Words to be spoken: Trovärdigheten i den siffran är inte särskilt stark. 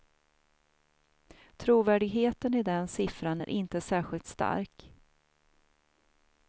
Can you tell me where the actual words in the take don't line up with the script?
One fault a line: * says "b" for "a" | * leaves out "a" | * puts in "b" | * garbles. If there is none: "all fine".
all fine